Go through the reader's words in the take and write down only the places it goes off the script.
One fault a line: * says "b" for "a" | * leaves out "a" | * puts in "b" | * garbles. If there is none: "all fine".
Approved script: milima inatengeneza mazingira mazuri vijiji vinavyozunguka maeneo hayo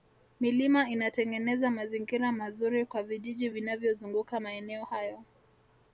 * puts in "kwa"